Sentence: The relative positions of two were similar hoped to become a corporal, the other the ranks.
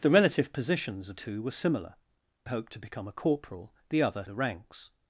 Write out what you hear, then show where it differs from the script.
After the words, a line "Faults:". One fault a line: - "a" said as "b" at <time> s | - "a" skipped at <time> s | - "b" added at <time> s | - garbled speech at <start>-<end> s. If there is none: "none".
The relative positions of two were similar hoped to become a corporal, the other the ranks.
Faults:
none